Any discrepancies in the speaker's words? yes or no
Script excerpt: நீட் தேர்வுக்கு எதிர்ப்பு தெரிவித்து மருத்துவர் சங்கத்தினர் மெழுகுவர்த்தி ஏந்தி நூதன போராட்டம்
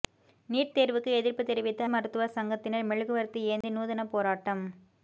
no